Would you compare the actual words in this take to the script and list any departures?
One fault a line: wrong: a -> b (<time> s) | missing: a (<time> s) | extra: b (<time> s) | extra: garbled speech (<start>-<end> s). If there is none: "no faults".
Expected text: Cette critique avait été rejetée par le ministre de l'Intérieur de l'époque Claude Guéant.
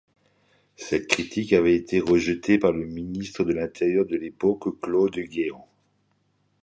no faults